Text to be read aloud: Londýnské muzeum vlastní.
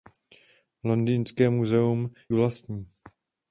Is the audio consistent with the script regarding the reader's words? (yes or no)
yes